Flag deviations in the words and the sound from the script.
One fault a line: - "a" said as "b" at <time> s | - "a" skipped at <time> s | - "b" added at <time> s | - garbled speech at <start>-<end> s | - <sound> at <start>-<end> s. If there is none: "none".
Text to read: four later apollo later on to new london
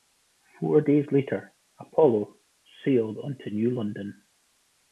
- "days" added at 0.8 s
- "later" said as "sailed" at 2.8 s